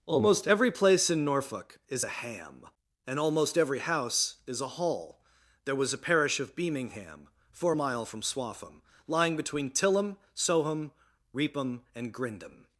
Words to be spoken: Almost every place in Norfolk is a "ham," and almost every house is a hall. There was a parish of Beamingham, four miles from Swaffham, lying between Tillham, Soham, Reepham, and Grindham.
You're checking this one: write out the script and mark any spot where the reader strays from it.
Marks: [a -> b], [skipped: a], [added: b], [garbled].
Almost every place in Norfolk is a "ham," and almost every house is a hall. There was a parish of Beamingham, four [miles -> mile] from Swaffham, lying between Tillham, Soham, Reepham, and Grindham.